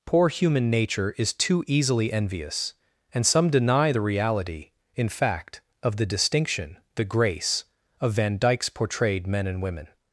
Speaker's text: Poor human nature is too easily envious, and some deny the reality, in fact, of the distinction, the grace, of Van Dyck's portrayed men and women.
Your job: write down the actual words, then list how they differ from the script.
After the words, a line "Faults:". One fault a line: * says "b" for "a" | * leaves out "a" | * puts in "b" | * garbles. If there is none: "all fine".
Poor human nature is too easily envious, and some deny the reality, in fact, of the distinction, the grace, of Van Dyck's portrayed men and women.
Faults:
all fine